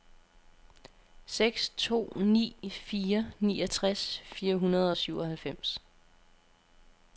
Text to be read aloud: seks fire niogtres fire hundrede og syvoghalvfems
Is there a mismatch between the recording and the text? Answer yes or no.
yes